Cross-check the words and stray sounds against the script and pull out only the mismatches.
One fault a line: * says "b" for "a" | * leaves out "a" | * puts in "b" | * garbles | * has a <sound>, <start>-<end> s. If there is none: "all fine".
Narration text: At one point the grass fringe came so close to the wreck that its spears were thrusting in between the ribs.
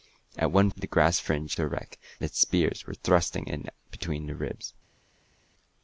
* leaves out "point"
* leaves out "came so close"
* leaves out "that"